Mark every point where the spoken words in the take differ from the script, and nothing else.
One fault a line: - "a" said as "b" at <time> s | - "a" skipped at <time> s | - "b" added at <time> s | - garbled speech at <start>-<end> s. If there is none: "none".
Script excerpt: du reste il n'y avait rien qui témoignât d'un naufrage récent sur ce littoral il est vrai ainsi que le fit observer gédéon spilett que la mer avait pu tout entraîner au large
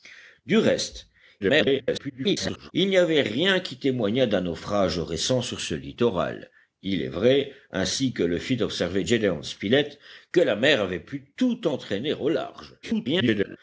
- garbled speech at 1.4-2.7 s
- garbled speech at 12.8-13.6 s